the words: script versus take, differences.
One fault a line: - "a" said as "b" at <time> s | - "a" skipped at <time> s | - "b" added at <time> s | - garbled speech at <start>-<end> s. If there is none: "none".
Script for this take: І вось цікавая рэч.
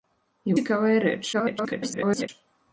- "вось" skipped at 0.6 s
- garbled speech at 1.3-2.3 s